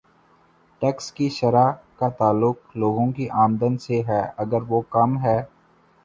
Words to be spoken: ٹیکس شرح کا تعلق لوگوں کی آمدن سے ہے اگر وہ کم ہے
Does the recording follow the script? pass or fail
fail